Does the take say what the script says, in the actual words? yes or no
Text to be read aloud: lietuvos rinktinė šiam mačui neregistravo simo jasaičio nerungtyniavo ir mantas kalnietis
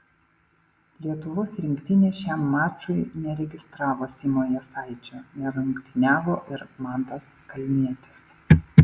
yes